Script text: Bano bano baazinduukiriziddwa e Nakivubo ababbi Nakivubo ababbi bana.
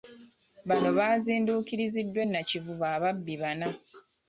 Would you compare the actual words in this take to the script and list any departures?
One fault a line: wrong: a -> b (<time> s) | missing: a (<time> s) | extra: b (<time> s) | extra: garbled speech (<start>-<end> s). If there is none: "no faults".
missing: bano (0.9 s)
missing: Nakivubo ababbi (3.3 s)